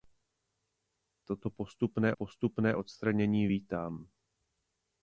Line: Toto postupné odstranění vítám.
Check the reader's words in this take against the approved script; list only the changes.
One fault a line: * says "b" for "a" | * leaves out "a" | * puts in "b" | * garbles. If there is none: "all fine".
* puts in "postupné"